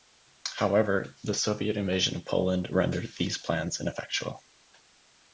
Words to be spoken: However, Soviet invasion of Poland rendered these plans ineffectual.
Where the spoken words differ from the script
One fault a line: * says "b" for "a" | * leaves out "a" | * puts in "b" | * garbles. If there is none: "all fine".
* puts in "the"